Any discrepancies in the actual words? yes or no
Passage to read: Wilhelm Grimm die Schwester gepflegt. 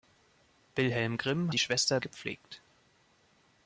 no